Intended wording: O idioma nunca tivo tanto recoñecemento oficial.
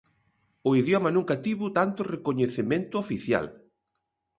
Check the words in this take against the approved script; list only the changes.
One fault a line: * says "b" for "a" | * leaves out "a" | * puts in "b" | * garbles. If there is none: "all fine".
all fine